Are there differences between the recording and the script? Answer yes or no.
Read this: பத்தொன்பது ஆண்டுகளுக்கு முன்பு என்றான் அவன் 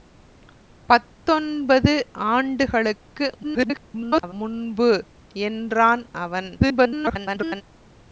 yes